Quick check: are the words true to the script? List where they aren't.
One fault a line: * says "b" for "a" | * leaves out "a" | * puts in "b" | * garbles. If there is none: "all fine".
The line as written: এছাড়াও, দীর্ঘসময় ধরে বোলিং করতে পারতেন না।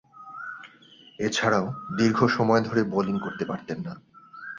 all fine